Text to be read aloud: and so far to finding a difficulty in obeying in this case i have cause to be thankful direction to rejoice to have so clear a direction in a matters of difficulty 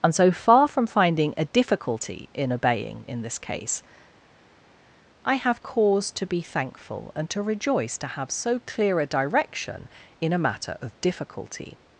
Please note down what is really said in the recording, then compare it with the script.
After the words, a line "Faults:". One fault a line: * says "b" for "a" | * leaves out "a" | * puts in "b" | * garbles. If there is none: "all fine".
and so far from finding a difficulty in obeying in this case i have cause to be thankful and to rejoice to have so clear a direction in a matter of difficulty
Faults:
* says "from" for "to"
* says "and" for "direction"
* says "matter" for "matters"